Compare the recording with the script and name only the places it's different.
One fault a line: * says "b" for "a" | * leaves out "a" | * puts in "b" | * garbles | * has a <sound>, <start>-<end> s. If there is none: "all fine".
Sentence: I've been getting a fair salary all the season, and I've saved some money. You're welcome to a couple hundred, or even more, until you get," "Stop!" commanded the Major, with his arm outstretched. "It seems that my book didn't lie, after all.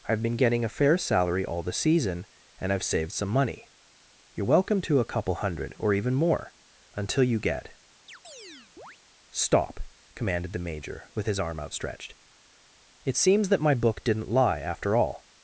* has a chirp, 8.1-9.0 s